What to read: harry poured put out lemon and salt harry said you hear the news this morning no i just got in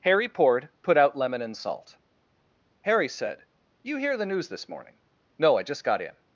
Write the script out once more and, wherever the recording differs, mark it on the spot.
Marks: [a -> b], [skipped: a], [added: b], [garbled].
harry poured put out lemon and salt harry said you hear the news this morning no i just got in